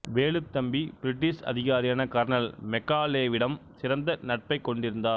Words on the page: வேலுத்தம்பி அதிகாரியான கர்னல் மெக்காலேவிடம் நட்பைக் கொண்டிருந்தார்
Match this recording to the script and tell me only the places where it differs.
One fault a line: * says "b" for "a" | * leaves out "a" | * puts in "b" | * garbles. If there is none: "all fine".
* puts in "பிரிட்டிஷ்"
* puts in "சிறந்த"